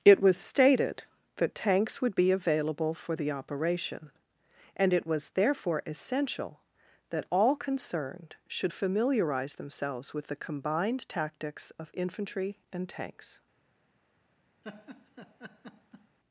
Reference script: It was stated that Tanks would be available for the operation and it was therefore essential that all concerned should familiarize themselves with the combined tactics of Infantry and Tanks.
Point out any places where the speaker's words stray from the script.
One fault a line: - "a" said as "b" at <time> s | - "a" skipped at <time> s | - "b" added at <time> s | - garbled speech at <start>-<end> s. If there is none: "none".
none